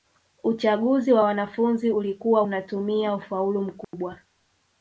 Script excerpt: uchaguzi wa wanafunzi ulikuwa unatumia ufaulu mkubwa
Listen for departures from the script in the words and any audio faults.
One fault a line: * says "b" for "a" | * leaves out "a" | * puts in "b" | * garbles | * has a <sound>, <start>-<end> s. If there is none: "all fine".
* has a dropout, 3.8-3.9 s